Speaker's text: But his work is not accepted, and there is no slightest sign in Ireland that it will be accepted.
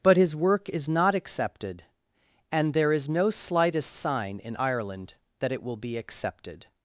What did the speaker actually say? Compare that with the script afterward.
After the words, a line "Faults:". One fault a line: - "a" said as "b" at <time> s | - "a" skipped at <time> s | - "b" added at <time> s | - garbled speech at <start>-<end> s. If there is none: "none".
But his work is not accepted, and there is no slightest sign in Ireland that it will be accepted.
Faults:
none